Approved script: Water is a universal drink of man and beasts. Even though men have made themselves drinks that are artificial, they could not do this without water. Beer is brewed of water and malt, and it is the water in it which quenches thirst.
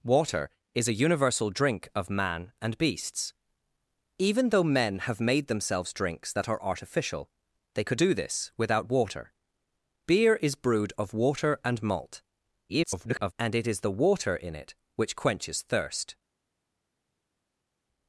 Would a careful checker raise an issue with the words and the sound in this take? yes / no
yes